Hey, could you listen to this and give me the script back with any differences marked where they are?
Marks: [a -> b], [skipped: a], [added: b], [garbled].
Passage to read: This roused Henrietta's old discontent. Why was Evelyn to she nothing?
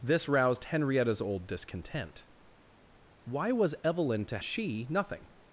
This roused Henrietta's old discontent. Why was Evelyn to she nothing?